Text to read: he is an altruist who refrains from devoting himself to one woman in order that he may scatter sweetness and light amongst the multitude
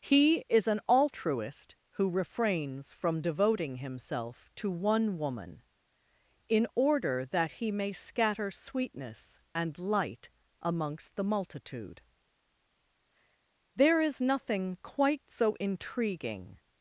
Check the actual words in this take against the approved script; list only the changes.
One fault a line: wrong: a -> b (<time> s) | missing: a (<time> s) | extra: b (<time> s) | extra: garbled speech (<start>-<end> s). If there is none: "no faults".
extra: there is nothing quite so intriguing (13.7 s)